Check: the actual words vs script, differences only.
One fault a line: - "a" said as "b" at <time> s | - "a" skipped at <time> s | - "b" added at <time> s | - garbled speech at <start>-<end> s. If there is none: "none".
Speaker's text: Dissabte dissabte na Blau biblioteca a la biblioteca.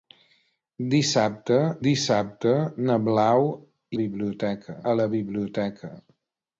none